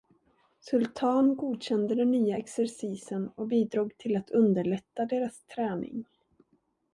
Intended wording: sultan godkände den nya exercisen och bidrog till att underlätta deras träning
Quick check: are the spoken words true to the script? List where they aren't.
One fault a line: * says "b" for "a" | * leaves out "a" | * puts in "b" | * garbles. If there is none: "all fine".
all fine